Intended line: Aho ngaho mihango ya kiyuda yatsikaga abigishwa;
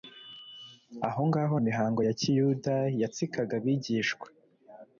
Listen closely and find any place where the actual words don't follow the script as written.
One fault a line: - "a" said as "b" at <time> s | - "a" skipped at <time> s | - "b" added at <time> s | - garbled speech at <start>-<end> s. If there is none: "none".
none